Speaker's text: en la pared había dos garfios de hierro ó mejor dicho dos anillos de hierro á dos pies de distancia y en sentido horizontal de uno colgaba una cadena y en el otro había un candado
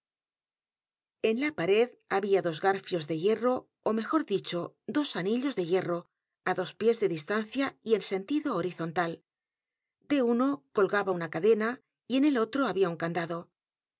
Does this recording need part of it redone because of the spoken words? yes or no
no